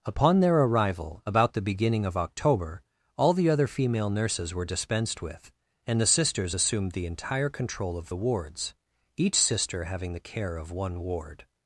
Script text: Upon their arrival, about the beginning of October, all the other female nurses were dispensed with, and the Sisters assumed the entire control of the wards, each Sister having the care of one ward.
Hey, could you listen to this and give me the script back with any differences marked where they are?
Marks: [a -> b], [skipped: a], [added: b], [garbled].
Upon their arrival, about the beginning of October, all the other female nurses were dispensed with, and the Sisters assumed the entire control of the wards, each Sister having the care of one ward.